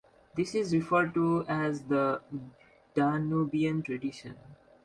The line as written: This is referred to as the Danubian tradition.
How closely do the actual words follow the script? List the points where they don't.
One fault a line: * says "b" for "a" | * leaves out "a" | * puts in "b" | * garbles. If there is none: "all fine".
all fine